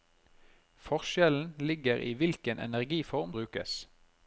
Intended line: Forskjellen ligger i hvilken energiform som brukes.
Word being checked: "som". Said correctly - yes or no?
no